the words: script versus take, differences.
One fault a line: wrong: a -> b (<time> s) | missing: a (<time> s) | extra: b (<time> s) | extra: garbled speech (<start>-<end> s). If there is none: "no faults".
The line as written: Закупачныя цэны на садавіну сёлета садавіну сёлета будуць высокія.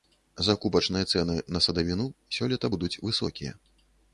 missing: садавіну сёлета (2.7 s)